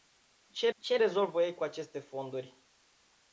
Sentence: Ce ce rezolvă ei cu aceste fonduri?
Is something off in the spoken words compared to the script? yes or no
no